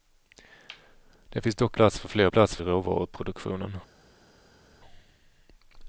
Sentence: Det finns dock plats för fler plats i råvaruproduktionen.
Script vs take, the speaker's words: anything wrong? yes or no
no